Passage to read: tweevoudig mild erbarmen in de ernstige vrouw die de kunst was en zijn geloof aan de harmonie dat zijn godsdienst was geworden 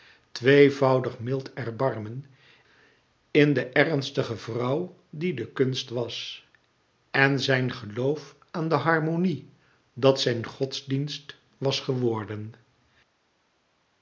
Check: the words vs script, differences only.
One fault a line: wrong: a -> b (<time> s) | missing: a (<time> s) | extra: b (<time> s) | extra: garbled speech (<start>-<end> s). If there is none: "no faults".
no faults